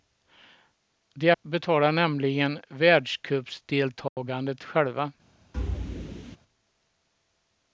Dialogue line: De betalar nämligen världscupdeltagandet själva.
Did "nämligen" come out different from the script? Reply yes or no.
no